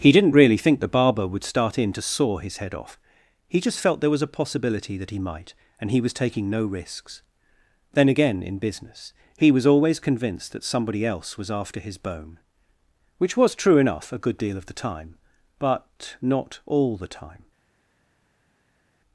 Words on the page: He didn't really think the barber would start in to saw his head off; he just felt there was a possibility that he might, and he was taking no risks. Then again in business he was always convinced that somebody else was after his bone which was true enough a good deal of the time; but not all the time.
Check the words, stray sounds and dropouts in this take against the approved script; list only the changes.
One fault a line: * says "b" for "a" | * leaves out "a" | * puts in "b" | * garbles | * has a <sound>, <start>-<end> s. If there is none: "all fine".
all fine